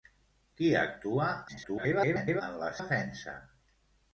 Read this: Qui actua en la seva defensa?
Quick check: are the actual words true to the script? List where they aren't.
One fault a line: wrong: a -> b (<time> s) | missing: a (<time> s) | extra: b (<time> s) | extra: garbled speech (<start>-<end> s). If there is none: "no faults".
extra: garbled speech (1.5-2.4 s)
missing: seva (2.7 s)